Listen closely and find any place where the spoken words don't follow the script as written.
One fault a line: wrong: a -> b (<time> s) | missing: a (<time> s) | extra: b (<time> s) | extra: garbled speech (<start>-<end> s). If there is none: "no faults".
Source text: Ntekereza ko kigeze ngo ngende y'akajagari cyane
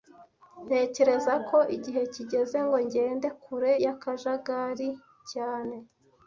extra: igihe (1.8 s)
extra: kure (3.4 s)